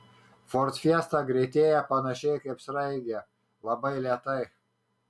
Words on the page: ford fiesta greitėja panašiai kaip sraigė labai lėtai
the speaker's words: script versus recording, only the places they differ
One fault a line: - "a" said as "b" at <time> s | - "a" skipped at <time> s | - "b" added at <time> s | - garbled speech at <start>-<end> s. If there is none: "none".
none